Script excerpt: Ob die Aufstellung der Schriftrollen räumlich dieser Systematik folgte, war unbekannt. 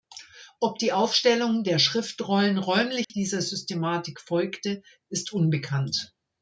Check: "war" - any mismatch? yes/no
yes